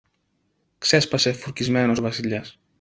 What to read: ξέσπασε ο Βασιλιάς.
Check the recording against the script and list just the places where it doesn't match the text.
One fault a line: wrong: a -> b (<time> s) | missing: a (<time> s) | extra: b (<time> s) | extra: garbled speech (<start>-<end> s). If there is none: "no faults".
extra: φουρκισμένος (1.3 s)